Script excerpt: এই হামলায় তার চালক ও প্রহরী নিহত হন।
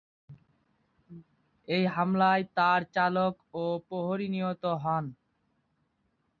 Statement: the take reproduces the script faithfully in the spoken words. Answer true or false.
true